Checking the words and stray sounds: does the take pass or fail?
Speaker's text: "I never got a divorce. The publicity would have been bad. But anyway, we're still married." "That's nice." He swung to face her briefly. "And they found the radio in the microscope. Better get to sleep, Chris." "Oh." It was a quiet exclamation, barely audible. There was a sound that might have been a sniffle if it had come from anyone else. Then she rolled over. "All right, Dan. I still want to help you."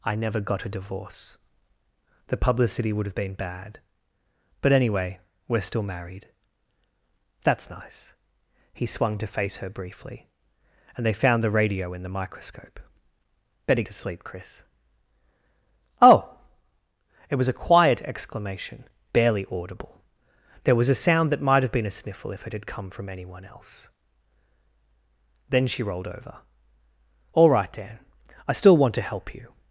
fail